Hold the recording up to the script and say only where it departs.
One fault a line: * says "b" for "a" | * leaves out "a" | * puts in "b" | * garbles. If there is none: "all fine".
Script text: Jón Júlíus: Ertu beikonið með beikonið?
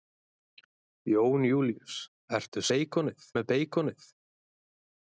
all fine